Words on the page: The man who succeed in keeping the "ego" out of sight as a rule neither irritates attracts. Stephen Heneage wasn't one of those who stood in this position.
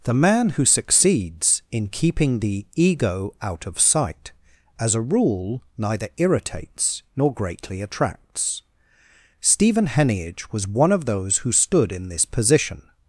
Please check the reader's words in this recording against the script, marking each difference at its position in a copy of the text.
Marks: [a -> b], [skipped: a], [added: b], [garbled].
The man who [succeed -> succeeds] in keeping the "ego" out of sight as a rule neither irritates [added: nor greatly] attracts. Stephen Heneage [wasn't -> was] one of those who stood in this position.